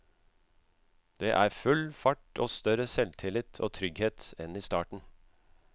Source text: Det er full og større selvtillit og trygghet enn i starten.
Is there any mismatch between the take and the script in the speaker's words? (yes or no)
yes